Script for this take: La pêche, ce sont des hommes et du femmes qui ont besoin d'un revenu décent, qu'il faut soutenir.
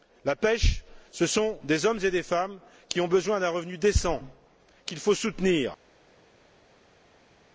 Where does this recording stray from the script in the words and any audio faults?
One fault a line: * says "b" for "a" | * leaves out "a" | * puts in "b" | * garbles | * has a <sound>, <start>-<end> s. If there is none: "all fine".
* says "des" for "du"